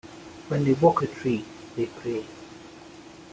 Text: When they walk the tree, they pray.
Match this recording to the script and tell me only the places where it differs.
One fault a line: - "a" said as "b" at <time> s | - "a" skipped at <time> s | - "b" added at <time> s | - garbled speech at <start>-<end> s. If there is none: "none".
none